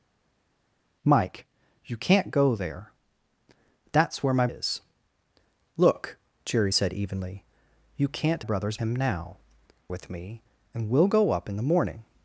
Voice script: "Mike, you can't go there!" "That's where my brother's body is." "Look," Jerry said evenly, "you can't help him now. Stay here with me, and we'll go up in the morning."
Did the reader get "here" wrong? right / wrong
wrong